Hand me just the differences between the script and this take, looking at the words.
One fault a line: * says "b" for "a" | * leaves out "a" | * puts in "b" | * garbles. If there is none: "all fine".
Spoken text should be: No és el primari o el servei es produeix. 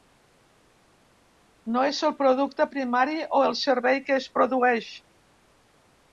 * puts in "producte"
* puts in "que"